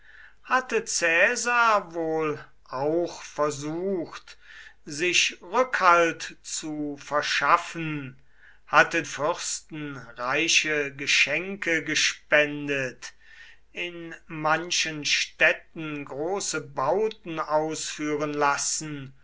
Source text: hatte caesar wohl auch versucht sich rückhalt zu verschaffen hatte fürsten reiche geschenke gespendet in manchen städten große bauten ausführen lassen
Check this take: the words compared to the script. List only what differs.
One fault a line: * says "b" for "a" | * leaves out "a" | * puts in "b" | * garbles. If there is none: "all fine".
all fine